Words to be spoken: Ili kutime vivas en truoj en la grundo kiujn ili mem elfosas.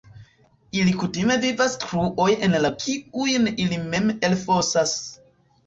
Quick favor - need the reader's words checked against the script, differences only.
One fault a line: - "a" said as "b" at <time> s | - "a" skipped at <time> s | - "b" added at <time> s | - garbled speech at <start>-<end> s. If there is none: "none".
- "en" skipped at 1.8 s
- "grundo" skipped at 2.7 s